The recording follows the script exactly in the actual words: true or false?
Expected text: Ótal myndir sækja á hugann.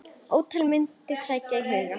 true